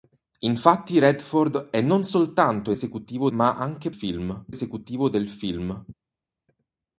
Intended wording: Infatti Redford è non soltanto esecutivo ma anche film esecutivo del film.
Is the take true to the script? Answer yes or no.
yes